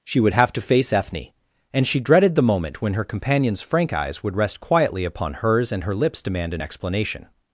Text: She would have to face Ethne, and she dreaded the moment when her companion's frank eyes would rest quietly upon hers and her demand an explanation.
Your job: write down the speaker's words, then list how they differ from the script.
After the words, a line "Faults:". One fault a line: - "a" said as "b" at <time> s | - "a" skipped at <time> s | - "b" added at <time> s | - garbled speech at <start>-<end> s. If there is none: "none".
She would have to face Ethne, and she dreaded the moment when her companion's frank eyes would rest quietly upon hers and her lips demand an explanation.
Faults:
- "lips" added at 6.0 s